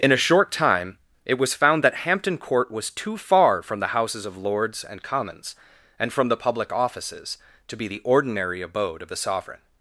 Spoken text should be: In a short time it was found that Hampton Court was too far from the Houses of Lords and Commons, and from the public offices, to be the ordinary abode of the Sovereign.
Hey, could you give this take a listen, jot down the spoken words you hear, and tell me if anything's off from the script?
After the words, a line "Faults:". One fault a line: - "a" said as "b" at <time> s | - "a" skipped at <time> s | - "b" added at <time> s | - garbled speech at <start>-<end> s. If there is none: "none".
In a short time it was found that Hampton Court was too far from the Houses of Lords and Commons, and from the public offices, to be the ordinary abode of the Sovereign.
Faults:
none